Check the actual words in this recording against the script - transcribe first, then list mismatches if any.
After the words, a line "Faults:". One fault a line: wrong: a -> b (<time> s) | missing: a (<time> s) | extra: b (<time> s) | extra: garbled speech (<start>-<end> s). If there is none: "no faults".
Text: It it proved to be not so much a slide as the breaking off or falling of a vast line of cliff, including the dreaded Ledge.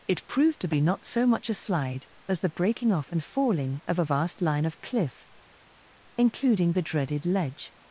It proved to be not so much a slide as the breaking off and falling of a vast line of cliff, including the dreaded Ledge.
Faults:
missing: it (0.3 s)
wrong: or -> and (3.1 s)